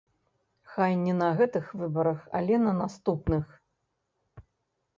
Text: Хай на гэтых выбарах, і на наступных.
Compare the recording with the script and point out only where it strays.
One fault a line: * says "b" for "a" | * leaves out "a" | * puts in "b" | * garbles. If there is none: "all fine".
* puts in "не"
* says "але" for "і"